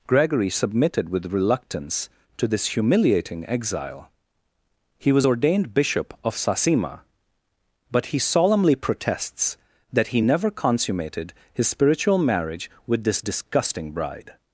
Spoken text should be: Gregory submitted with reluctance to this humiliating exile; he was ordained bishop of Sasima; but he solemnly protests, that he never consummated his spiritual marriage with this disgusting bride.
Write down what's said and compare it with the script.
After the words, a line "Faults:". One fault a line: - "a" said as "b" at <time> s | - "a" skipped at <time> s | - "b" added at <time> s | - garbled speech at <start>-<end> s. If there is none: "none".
Gregory submitted with reluctance to this humiliating exile; he was ordained bishop of Sasima; but he solemnly protests, that he never consummated his spiritual marriage with this disgusting bride.
Faults:
none